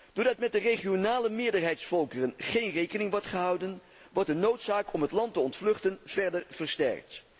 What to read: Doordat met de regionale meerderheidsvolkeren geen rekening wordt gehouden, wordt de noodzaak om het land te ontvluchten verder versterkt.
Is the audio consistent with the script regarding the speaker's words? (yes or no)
yes